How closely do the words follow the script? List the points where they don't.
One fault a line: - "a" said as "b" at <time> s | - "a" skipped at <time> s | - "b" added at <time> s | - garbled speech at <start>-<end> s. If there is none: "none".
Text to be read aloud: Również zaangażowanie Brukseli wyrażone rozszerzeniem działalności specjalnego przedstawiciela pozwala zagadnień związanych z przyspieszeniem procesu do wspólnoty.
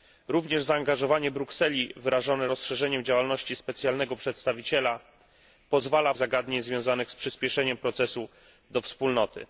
none